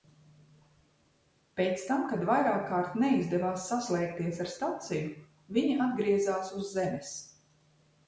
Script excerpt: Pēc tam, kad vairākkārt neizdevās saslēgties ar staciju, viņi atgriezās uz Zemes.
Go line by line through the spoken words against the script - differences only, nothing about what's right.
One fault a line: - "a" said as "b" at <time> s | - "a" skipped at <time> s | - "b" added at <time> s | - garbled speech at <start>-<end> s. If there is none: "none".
none